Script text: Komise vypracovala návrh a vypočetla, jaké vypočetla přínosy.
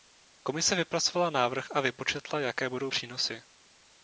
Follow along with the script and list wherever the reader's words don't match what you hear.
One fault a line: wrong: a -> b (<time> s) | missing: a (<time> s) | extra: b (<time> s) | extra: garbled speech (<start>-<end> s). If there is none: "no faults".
wrong: vypočetla -> budou (2.7 s)